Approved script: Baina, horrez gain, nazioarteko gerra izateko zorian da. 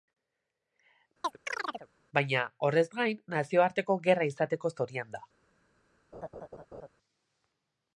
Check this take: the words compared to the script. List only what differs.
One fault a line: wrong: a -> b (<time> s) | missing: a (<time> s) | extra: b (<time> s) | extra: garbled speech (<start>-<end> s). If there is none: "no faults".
no faults